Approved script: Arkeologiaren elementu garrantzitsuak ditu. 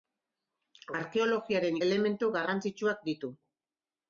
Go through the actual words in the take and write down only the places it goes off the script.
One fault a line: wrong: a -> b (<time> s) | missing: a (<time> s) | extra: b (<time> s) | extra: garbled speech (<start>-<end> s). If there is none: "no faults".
no faults